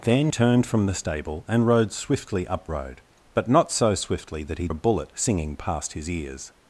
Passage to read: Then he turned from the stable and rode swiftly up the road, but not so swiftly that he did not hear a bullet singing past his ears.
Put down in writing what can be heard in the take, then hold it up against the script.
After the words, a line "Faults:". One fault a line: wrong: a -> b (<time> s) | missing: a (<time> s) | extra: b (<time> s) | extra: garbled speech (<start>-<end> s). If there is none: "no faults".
Then turned from the stable and rode swiftly up road, but not so swiftly that he a bullet singing past his ears.
Faults:
missing: he (0.3 s)
missing: the (2.7 s)
missing: did not hear (4.7 s)